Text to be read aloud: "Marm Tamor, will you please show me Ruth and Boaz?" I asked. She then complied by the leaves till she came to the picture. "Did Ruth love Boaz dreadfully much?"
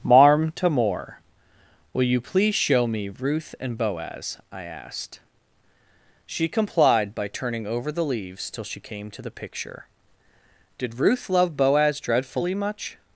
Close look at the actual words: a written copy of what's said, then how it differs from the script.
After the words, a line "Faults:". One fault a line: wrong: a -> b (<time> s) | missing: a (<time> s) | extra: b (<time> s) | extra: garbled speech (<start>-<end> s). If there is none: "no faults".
"Marm Tamor, will you please show me Ruth and Boaz?" I asked. She complied by turning over the leaves till she came to the picture. "Did Ruth love Boaz dreadfully much?"
Faults:
missing: then (6.5 s)
extra: turning over (7.3 s)